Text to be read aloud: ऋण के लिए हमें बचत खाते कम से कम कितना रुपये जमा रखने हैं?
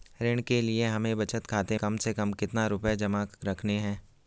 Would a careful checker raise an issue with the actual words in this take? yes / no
no